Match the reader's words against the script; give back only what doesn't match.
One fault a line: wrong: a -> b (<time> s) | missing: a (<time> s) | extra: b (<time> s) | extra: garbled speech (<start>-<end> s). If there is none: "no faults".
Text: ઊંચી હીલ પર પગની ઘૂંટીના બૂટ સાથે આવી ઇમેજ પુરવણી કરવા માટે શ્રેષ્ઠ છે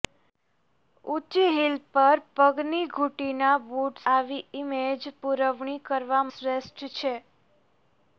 missing: સાથે (4.0 s)
missing: માટે (6.2 s)